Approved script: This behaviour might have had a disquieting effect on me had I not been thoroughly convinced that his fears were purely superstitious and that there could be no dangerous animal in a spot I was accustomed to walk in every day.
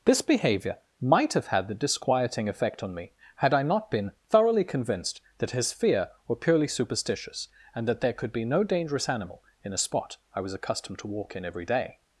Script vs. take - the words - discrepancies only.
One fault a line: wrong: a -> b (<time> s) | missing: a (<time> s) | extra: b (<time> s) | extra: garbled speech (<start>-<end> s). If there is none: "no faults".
wrong: a -> the (1.7 s)
wrong: fears -> fear (5.7 s)